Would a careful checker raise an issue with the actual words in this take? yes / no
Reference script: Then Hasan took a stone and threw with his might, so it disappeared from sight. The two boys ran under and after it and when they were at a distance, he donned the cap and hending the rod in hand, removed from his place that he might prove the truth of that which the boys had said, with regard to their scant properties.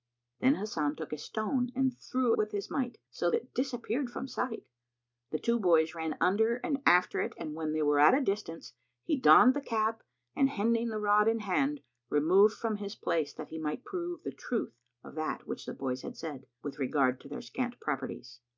no